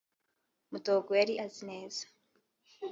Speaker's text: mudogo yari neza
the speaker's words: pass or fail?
fail